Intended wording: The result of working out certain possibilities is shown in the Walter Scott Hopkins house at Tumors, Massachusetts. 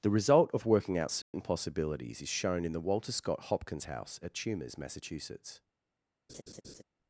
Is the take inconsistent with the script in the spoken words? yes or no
no